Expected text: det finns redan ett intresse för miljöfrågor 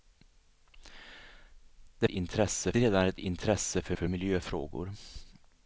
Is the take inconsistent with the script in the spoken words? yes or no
yes